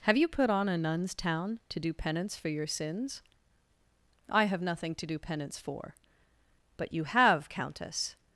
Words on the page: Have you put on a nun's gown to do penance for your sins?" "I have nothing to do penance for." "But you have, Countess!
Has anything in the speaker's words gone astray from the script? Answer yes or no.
yes